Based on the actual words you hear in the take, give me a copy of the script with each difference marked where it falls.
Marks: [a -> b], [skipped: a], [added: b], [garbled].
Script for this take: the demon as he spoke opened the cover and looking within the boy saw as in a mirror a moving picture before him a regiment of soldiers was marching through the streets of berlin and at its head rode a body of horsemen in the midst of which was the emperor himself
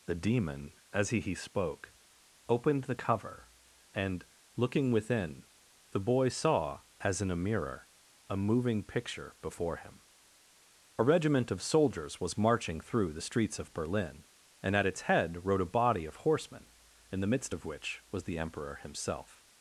the demon as he [added: he] spoke opened the cover and looking within the boy saw as in a mirror a moving picture before him a regiment of soldiers was marching through the streets of berlin and at its head rode a body of horsemen in the midst of which was the emperor himself